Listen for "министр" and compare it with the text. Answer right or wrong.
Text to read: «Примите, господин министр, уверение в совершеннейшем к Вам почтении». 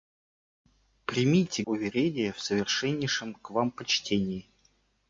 wrong